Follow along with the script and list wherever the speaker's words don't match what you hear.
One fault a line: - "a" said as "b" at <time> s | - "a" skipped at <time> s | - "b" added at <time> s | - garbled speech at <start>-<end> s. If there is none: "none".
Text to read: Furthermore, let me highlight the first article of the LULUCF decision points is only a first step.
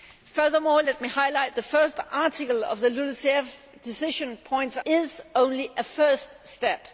none